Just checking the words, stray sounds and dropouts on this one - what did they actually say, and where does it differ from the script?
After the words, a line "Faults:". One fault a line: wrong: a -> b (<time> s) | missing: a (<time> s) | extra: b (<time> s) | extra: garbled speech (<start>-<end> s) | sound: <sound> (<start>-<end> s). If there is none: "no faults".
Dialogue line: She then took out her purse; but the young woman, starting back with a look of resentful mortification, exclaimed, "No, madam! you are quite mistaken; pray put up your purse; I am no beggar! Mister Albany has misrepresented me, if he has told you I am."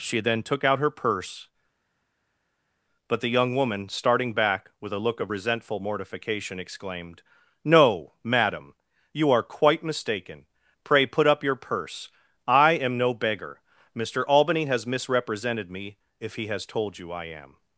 She then took out her purse; but the young woman, starting back with a look of resentful mortification, exclaimed, "No, madam! you are quite mistaken; pray put up your purse; I am no beggar! Mister Albany has misrepresented me, if he has told you I am."
Faults:
no faults